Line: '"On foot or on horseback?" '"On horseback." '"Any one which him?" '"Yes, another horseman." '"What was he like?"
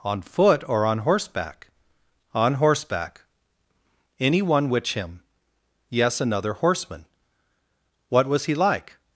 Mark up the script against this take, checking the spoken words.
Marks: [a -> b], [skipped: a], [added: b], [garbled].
'"On foot or on horseback?" '"On horseback." '"Any one which him?" '"Yes, another horseman." '"What was he like?"